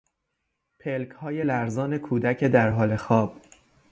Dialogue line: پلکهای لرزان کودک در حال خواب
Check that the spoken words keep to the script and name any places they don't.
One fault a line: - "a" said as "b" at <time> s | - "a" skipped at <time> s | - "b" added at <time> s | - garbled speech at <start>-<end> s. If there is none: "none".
none